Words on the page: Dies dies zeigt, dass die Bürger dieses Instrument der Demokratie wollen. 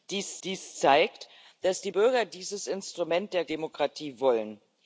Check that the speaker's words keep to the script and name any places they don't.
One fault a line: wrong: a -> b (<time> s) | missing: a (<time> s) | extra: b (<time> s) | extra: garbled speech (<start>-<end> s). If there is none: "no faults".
no faults